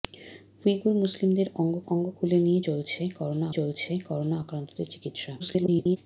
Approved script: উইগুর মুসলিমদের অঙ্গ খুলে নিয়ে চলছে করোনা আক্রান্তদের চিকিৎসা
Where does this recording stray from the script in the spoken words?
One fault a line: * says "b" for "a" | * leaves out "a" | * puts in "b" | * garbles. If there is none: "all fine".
* puts in "অঙ্গ"
* puts in "চলছে করোনা"
* garbles